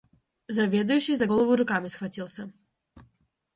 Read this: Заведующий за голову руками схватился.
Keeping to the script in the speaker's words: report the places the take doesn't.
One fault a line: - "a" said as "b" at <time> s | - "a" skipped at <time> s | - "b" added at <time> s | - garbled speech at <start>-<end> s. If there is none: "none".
none